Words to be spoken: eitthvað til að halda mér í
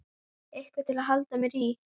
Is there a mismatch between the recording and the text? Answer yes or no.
no